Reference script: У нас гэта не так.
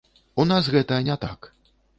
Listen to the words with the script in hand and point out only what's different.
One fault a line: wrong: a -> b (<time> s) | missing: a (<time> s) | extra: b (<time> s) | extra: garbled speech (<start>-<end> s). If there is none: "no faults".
no faults